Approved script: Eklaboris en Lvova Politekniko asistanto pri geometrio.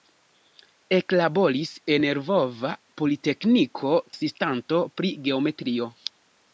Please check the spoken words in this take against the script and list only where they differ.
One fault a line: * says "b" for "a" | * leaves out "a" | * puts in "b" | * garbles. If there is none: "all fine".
all fine